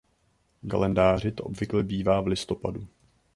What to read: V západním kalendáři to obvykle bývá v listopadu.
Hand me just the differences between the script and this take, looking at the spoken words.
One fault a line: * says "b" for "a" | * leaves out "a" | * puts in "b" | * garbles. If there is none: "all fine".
* leaves out "západním"